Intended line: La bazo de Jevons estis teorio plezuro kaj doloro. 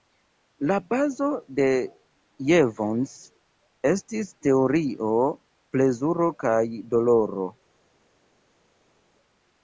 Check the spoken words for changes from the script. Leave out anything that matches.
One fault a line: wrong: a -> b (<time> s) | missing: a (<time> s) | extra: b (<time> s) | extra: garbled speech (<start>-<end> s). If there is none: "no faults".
no faults